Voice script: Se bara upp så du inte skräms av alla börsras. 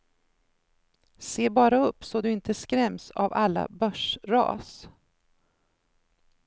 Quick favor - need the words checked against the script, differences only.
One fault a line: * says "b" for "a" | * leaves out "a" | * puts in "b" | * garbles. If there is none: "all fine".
all fine